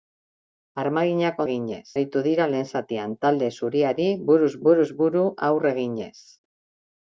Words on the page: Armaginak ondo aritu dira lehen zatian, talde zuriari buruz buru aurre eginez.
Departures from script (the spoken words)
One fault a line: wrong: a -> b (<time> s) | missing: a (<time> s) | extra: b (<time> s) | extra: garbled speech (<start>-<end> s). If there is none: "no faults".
wrong: ondo -> eginez (1.5 s)
extra: buruz (4.7 s)